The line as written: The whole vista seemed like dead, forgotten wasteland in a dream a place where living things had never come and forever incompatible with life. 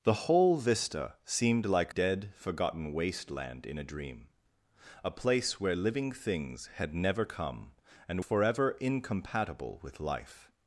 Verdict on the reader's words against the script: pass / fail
pass